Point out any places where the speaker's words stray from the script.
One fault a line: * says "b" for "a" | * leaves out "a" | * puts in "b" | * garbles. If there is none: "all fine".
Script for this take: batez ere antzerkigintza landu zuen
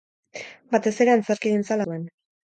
* leaves out "landu"